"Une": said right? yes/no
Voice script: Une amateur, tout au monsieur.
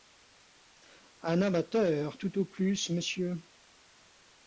no